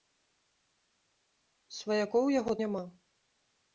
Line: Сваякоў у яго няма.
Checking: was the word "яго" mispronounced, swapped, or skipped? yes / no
no